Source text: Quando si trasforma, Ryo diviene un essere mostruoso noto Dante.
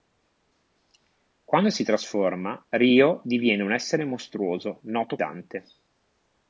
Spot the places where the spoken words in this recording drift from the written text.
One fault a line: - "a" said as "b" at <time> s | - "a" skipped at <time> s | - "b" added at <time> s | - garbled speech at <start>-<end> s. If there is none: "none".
none